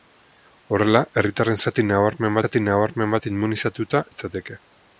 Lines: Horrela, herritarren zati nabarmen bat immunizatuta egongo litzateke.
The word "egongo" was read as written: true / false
false